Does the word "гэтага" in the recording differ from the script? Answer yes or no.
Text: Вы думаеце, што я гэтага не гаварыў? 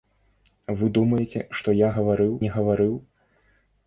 yes